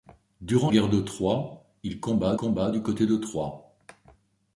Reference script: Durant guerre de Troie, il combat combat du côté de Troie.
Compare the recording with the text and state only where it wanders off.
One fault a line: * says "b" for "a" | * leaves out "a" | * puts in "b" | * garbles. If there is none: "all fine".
all fine